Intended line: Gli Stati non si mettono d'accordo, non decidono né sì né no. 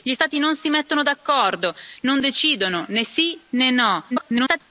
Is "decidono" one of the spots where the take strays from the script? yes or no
no